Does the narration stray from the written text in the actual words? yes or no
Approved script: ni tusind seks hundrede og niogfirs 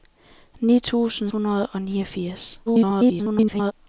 yes